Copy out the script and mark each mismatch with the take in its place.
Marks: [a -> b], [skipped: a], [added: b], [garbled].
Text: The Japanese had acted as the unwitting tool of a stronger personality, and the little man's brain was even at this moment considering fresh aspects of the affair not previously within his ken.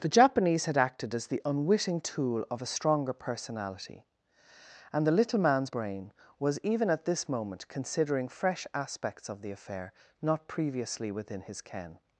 The Japanese had acted as the unwitting tool of a stronger personality, and the little man's brain was even at this moment considering fresh aspects of the affair not previously within his ken.